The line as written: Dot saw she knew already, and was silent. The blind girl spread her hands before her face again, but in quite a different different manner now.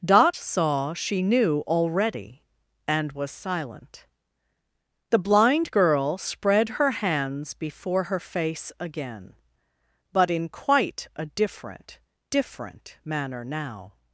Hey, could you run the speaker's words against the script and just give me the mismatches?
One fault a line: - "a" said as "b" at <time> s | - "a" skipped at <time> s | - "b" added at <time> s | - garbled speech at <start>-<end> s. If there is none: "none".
none